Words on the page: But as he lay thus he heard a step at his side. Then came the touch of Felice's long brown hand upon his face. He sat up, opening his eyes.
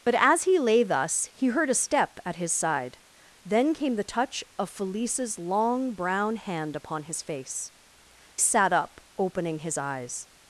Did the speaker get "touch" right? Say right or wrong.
right